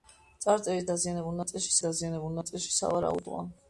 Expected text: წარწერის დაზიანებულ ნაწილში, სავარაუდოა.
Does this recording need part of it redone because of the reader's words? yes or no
yes